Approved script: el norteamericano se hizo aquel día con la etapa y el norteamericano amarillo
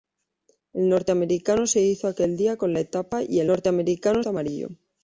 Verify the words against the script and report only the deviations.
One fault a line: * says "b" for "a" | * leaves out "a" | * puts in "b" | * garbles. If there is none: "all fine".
all fine